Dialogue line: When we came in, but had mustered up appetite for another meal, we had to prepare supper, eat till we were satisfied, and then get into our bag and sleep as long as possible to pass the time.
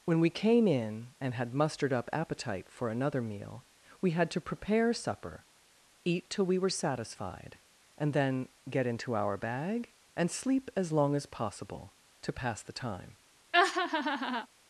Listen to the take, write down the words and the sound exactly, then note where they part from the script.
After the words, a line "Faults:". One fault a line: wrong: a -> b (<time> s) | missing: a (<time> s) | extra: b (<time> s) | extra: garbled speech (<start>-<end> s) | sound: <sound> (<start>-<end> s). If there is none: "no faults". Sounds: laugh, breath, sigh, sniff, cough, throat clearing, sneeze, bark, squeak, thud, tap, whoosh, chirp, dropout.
When we came in, and had mustered up appetite for another meal, we had to prepare supper, eat till we were satisfied, and then get into our bag and sleep as long as possible to pass the time.
Faults:
wrong: but -> and (1.2 s)
sound: laugh (13.5-14.5 s)